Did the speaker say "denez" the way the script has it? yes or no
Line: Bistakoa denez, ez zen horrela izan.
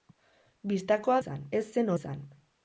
no